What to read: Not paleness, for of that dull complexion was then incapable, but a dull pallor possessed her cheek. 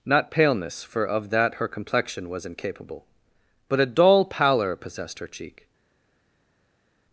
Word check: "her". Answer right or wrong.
right